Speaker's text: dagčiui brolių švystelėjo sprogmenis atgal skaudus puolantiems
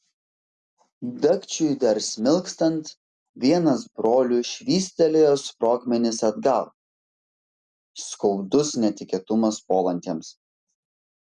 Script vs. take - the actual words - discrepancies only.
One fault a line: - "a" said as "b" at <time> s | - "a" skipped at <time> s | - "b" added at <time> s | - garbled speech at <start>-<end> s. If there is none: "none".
- "dar smilkstant vienas" added at 1.8 s
- "netikėtumas" added at 8.9 s